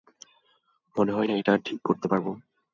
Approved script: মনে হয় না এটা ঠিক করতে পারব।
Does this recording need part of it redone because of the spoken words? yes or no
no